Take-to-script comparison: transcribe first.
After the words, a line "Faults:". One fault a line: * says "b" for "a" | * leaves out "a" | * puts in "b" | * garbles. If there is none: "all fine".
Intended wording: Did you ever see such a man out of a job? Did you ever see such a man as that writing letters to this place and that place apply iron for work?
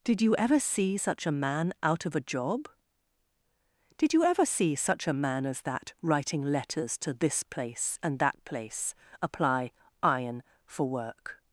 Did you ever see such a man out of a job? Did you ever see such a man as that writing letters to this place and that place apply iron for work?
Faults:
all fine